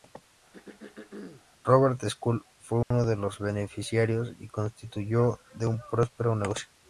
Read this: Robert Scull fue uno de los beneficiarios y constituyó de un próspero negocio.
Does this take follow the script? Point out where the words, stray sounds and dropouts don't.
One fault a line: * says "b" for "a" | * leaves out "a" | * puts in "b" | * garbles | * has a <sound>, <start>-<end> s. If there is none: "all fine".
* has a throat clearing, 0.5-1.4 s
* has a dropout, 2.8-2.9 s